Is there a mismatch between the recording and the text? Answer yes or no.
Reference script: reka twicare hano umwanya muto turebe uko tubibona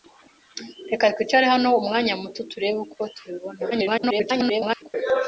yes